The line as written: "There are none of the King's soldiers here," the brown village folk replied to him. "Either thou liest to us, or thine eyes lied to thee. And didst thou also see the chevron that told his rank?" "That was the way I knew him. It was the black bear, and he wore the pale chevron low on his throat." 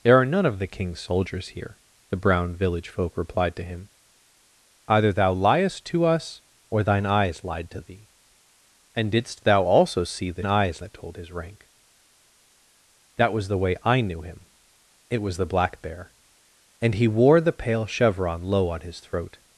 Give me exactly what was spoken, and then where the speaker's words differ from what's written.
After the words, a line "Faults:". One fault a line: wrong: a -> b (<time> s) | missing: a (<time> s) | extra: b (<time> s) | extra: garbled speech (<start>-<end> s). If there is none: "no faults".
"There are none of the King's soldiers here," the brown village folk replied to him. "Either thou liest to us, or thine eyes lied to thee. And didst thou also see the eyes that told his rank?" "That was the way I knew him. It was the black bear, and he wore the pale chevron low on his throat."
Faults:
wrong: chevron -> eyes (10.4 s)